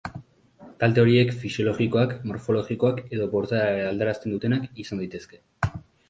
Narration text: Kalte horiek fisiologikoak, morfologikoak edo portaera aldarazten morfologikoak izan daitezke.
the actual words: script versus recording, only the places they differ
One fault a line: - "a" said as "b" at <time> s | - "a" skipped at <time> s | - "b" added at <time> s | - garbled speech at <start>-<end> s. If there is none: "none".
- "morfologikoak" said as "dutenak" at 4.3 s